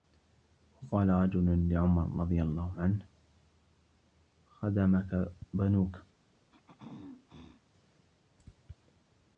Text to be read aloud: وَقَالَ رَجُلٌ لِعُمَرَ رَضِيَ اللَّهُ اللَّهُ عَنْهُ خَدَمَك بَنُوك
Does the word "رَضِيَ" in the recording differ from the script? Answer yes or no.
no